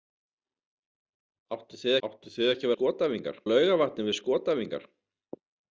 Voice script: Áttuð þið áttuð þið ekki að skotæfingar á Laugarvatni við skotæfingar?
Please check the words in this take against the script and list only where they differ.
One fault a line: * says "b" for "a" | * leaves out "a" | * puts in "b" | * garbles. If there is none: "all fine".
all fine